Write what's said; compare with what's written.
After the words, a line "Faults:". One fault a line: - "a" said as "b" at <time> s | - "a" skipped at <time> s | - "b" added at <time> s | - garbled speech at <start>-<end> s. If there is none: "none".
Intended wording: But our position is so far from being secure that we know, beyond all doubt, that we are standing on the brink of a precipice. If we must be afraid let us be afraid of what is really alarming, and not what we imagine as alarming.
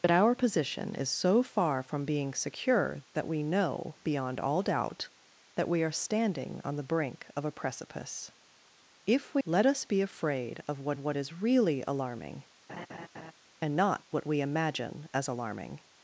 But our position is so far from being secure that we know, beyond all doubt, that we are standing on the brink of a precipice. If we let us be afraid of what what is really alarming, and not what we imagine as alarming.
Faults:
- "must be afraid" skipped at 9.4 s
- "what" added at 11.0 s